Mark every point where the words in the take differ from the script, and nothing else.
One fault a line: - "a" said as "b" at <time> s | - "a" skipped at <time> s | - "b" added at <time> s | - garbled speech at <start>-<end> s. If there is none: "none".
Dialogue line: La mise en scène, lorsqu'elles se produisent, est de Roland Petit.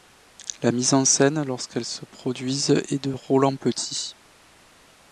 none